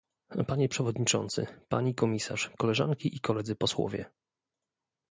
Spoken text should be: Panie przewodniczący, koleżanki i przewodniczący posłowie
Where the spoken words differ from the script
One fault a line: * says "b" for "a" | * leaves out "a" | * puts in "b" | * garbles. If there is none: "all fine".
* puts in "pani komisarz"
* says "koledzy" for "przewodniczący"